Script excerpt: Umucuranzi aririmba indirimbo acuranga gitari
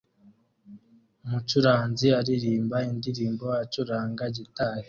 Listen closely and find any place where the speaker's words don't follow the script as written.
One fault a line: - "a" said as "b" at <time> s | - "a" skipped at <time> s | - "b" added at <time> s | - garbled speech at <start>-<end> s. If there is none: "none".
none